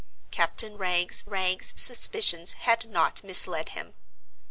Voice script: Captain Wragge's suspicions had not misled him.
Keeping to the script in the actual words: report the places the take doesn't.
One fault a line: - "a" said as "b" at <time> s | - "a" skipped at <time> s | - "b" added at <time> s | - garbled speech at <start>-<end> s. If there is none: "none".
- "Wragge's" added at 1.3 s